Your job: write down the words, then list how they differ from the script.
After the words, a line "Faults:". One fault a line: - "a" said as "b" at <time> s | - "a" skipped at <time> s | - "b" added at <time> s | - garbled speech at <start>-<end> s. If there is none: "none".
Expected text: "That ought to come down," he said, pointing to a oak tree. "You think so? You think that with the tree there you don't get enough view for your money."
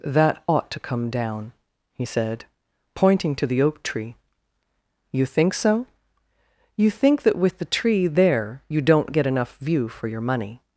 "That ought to come down," he said, pointing to the oak tree. "You think so? You think that with the tree there you don't get enough view for your money."
Faults:
- "a" said as "the" at 3.4 s